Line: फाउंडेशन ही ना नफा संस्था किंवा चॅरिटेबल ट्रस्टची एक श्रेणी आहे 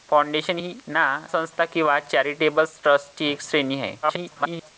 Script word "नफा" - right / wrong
wrong